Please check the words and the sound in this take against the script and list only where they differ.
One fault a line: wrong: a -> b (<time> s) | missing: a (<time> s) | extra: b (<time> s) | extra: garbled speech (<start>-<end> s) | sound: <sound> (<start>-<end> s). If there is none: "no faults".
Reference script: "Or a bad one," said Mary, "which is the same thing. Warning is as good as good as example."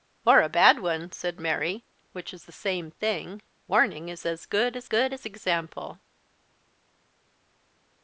no faults